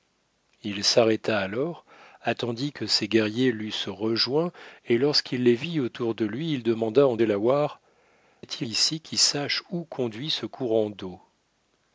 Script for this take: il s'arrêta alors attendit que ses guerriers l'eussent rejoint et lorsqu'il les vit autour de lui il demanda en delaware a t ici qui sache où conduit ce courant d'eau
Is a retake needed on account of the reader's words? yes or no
no